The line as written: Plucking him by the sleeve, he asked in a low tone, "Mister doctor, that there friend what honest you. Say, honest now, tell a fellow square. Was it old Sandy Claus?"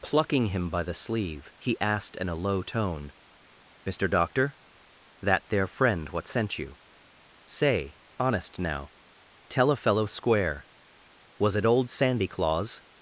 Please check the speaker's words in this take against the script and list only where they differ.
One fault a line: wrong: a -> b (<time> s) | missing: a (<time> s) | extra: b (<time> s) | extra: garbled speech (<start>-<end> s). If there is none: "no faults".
wrong: honest -> sent (6.3 s)